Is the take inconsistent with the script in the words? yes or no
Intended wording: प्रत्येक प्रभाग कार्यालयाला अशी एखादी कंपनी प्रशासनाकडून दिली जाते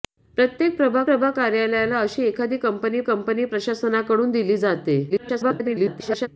yes